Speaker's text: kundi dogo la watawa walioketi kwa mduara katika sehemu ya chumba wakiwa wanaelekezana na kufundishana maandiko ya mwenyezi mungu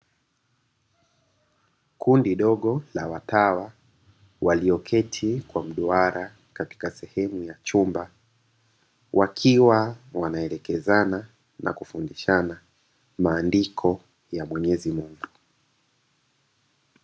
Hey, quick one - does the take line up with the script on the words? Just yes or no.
yes